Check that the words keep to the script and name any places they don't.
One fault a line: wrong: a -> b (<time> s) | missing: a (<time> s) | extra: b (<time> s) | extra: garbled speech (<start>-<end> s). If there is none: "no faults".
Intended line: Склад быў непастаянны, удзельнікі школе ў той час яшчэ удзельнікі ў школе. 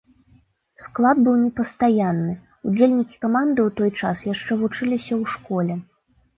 wrong: школе -> каманды (3.3 s)
wrong: удзельнікі -> вучыліся (4.6 s)